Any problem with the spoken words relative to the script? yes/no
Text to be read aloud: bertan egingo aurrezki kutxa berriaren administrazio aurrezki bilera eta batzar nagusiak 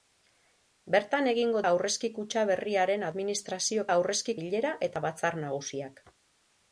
no